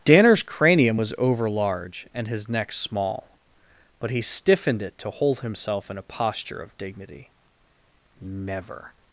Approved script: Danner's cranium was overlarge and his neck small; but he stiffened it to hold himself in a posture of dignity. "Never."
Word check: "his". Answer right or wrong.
right